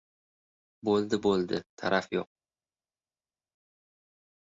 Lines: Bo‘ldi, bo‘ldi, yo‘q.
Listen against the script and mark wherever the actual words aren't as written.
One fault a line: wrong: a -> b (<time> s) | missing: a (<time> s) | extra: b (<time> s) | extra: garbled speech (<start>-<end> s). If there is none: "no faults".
extra: taraf (1.8 s)